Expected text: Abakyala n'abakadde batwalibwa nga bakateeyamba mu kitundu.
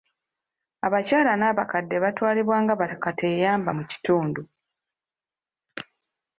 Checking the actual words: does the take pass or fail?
pass